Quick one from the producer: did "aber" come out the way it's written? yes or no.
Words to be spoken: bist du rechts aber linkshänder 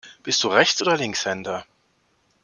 no